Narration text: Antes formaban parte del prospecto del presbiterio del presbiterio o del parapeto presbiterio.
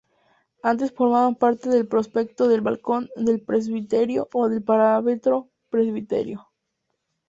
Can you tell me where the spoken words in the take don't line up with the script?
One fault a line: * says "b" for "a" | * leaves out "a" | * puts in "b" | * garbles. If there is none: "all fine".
* says "balcón" for "presbiterio"